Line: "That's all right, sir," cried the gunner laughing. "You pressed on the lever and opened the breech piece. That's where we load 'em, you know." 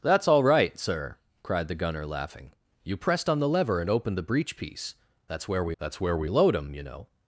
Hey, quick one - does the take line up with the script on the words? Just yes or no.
no